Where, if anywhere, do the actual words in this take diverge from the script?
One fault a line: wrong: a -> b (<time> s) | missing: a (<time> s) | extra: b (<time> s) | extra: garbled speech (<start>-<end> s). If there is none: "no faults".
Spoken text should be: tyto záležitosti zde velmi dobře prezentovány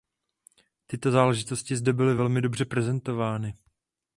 extra: byly (1.9 s)